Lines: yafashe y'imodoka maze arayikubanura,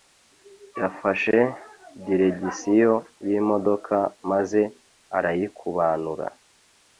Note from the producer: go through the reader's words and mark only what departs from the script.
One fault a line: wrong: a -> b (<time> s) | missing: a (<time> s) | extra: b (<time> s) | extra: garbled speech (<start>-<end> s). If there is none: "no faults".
extra: diregisiyo (2.0 s)